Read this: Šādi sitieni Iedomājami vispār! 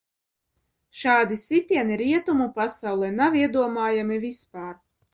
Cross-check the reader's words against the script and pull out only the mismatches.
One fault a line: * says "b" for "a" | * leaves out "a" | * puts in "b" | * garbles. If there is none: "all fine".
* puts in "Rietumu pasaulē nav"